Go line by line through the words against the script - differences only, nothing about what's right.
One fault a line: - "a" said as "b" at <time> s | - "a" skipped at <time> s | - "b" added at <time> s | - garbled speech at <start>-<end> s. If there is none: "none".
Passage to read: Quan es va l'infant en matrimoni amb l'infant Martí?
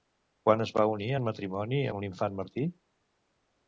- "l'infant" said as "unir" at 0.9 s